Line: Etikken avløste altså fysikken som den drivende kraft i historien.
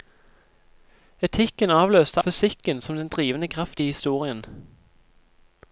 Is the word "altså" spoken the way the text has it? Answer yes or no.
no